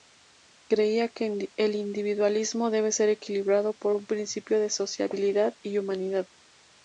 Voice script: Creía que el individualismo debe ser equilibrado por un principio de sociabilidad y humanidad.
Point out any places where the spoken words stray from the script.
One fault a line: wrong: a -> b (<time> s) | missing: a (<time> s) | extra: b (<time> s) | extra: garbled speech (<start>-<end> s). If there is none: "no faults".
no faults